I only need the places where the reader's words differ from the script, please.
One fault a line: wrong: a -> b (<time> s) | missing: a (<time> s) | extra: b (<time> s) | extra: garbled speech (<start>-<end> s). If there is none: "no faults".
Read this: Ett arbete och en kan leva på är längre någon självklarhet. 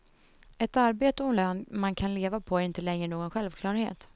extra: lön man (1.3 s)
extra: inte (2.6 s)